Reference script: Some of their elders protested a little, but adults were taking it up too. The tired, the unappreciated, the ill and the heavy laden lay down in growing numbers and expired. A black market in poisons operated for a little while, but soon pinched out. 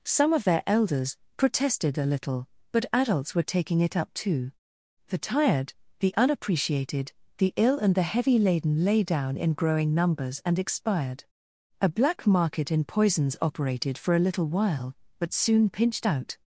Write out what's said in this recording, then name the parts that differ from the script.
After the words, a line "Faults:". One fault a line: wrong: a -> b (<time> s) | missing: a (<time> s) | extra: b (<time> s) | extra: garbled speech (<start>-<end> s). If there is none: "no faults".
Some of their elders protested a little, but adults were taking it up too. The tired, the unappreciated, the ill and the heavy laden lay down in growing numbers and expired. A black market in poisons operated for a little while, but soon pinched out.
Faults:
no faults